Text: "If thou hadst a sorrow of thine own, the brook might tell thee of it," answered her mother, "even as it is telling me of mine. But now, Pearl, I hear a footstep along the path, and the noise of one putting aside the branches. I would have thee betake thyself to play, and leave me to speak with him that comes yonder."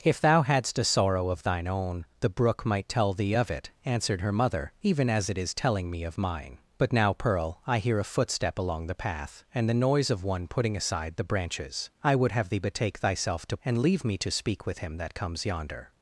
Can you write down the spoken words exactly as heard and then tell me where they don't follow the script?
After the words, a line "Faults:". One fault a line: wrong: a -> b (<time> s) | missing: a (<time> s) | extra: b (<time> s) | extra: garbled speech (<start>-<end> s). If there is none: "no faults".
"If thou hadst a sorrow of thine own, the brook might tell thee of it," answered her mother, "even as it is telling me of mine. But now, Pearl, I hear a footstep along the path, and the noise of one putting aside the branches. I would have thee betake thyself to and leave me to speak with him that comes yonder."
Faults:
missing: play (13.6 s)